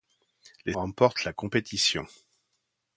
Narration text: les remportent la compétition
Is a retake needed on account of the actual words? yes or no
no